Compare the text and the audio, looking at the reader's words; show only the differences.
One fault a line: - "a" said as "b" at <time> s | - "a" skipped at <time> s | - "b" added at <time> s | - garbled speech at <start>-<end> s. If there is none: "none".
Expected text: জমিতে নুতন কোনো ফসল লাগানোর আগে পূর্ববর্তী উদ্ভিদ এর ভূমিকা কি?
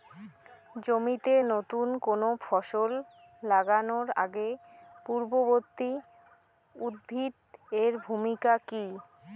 none